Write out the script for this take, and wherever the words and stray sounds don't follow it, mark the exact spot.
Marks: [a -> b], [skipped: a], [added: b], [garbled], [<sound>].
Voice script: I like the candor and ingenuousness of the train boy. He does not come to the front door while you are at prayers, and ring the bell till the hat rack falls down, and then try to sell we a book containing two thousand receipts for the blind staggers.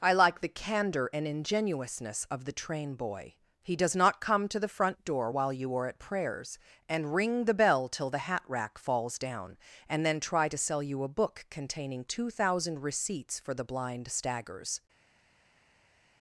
I like the candor and ingenuousness of the train boy. He does not come to the front door while you are at prayers, and ring the bell till the hat rack falls down, and then try to sell [we -> you] a book containing two thousand receipts for the blind staggers.